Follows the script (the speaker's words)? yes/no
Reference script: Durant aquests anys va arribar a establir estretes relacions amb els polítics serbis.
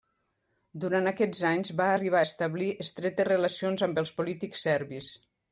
yes